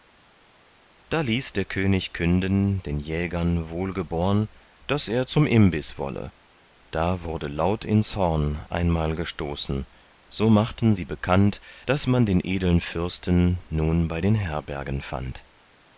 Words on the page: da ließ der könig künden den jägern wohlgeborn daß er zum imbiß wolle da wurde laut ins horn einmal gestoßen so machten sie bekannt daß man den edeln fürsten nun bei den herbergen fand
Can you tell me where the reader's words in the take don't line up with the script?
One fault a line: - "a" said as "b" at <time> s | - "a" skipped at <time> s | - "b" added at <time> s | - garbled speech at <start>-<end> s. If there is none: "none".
none